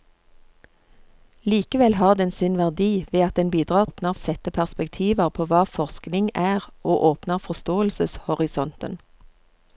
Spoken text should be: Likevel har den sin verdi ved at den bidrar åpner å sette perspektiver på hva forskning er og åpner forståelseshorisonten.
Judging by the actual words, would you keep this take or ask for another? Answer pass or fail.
pass